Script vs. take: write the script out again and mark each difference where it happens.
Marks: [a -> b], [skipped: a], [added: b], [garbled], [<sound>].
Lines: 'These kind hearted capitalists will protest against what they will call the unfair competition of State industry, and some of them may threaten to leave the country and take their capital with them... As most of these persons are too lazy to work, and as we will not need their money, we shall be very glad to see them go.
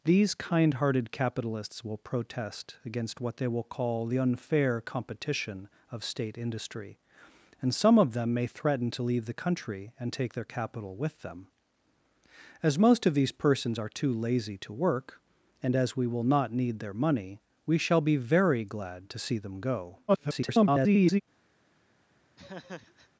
'These kind hearted capitalists will protest against what they will call the unfair competition of State industry, and some of them may threaten to leave the country and take their capital with them... As most of these persons are too lazy to work, and as we will not need their money, we shall be very glad to see them go. [garbled] [laugh]